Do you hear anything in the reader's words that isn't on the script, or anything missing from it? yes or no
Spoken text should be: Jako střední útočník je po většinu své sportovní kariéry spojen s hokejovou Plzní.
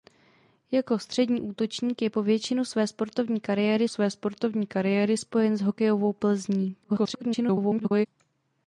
yes